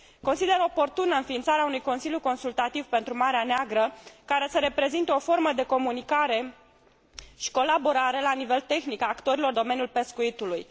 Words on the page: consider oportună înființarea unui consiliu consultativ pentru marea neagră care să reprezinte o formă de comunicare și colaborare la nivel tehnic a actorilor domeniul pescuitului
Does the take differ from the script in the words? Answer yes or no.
no